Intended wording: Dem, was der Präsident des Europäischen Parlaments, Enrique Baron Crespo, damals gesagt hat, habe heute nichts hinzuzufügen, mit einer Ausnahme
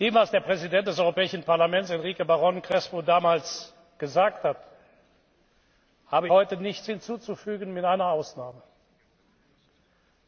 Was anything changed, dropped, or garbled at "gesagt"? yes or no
no